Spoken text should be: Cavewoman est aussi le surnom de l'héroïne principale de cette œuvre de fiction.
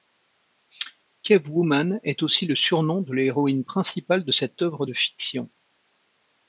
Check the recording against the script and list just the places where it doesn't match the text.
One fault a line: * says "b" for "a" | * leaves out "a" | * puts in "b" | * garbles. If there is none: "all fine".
all fine